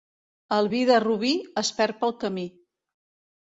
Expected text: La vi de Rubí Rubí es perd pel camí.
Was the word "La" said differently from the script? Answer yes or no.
yes